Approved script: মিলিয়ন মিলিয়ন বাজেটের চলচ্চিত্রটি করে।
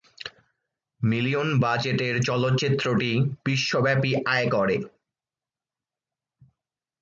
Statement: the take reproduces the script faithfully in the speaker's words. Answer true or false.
false